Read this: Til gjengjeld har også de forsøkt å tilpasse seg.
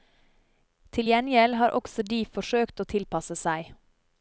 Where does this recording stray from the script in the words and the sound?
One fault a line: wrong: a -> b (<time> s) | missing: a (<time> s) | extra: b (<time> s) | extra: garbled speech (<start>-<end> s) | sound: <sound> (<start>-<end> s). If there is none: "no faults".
no faults